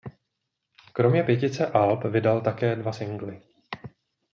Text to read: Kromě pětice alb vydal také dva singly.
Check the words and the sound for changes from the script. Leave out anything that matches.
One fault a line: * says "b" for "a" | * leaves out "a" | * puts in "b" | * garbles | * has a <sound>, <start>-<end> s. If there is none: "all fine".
all fine